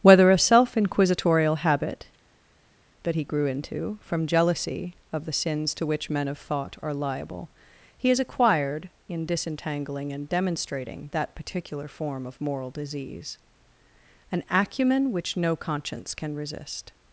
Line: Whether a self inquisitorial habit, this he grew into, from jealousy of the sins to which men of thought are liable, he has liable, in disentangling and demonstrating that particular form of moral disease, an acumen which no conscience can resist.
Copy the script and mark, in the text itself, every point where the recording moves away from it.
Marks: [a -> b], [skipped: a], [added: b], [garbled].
Whether a self inquisitorial habit, [this -> that] he grew into, from jealousy of the sins to which men of thought are liable, he has [liable, -> acquired] in disentangling and demonstrating that particular form of moral disease, an acumen which no conscience can resist.